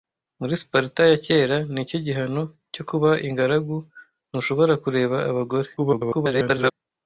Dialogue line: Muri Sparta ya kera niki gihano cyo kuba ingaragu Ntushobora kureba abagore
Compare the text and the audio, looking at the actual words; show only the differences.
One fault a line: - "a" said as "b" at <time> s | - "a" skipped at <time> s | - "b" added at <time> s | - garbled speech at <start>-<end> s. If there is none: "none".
- garbled speech at 5.8-6.7 s